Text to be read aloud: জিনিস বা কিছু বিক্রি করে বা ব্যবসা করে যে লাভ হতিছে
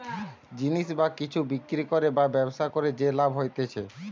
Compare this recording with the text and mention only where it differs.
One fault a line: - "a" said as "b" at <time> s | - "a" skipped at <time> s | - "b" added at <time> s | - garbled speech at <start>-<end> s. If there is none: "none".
none